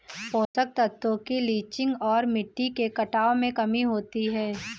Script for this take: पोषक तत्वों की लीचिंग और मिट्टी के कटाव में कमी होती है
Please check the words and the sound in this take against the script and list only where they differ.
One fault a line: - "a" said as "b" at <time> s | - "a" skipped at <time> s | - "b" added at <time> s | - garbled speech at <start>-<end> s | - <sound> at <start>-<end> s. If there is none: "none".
- dropout at 0.4-0.5 s